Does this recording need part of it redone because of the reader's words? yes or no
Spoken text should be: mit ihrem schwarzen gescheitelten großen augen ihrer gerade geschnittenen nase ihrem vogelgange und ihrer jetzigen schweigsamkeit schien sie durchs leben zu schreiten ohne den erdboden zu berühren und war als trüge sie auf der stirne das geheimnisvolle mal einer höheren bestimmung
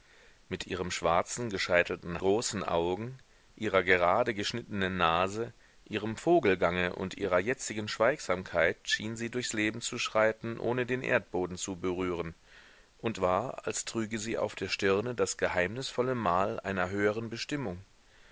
no